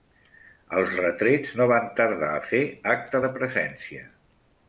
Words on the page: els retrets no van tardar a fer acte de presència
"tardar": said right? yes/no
yes